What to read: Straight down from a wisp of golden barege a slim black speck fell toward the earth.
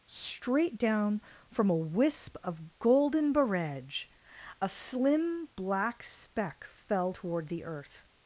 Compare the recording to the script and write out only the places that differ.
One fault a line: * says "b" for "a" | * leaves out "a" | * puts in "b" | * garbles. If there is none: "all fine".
all fine